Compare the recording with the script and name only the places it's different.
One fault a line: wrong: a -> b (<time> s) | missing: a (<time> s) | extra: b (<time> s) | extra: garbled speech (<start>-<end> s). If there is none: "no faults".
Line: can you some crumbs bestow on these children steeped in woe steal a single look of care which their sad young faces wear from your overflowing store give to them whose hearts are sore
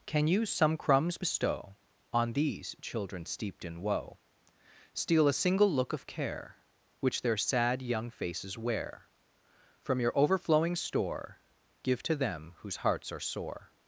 no faults